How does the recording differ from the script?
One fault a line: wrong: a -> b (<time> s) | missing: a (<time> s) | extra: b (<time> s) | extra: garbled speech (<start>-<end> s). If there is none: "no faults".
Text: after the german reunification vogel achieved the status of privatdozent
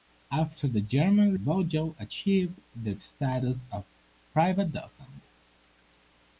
missing: reunification (1.4 s)